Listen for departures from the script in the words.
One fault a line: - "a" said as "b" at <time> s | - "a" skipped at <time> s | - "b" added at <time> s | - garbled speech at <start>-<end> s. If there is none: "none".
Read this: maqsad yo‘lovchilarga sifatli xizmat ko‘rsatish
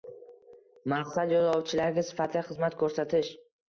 none